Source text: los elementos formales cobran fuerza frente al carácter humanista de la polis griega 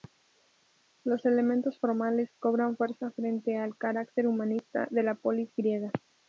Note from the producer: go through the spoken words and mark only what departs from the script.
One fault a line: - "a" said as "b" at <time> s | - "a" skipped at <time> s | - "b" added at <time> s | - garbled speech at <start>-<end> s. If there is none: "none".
none